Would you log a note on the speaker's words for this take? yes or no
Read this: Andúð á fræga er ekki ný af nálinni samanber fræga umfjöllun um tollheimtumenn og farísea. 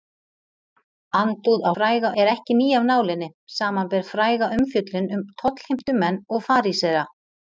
no